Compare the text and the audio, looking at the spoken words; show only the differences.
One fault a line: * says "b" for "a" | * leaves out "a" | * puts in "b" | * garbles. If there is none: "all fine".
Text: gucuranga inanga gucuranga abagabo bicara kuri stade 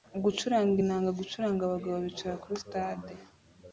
all fine